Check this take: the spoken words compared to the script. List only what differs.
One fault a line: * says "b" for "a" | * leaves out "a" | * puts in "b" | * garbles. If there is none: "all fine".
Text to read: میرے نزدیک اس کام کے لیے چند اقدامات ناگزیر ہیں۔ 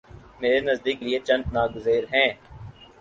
* leaves out "اس کام کے"
* leaves out "اقدامات"